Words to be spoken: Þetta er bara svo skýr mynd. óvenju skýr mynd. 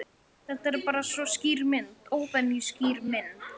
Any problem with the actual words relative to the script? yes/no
no